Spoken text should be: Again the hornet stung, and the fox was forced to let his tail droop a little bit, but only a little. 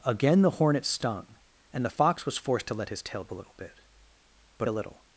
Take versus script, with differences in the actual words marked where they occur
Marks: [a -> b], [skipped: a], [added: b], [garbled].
Again the hornet stung, and the fox was forced to let his tail [skipped: droop] a little bit, but [skipped: only] a little.